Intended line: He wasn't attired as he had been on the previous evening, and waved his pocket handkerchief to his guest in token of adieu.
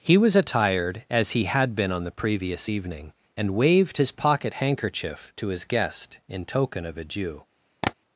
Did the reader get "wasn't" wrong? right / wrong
wrong